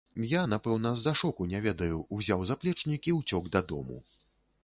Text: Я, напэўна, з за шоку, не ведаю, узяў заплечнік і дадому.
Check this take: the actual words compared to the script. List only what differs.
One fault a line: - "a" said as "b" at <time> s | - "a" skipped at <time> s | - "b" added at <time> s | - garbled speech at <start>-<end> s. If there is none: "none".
- "ўцёк" added at 3.2 s